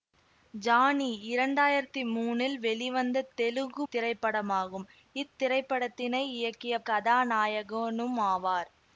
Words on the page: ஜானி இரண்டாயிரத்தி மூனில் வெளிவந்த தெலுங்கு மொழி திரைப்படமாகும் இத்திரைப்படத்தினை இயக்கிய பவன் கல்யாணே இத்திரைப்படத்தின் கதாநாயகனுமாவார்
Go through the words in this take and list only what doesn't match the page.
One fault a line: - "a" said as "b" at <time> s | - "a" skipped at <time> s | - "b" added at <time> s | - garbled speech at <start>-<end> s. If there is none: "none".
- "மொழி" skipped at 3.9 s
- "பவன் கல்யாணே இத்திரைப்படத்தின்" skipped at 6.8 s